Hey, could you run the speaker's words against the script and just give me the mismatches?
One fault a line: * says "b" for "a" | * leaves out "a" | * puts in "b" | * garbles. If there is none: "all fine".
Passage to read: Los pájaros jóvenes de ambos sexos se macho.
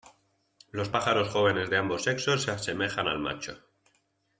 * puts in "asemejan al"